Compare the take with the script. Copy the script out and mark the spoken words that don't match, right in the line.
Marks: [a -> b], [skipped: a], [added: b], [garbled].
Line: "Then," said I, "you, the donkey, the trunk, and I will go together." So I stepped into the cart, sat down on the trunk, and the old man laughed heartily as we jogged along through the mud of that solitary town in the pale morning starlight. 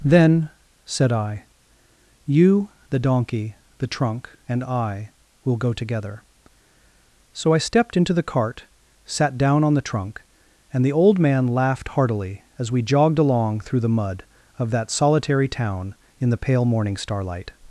"Then," said I, "you, the donkey, the trunk, and I will go together." So I stepped into the cart, sat down on the trunk, and the old man laughed heartily as we jogged along through the mud of that solitary town in the pale morning starlight.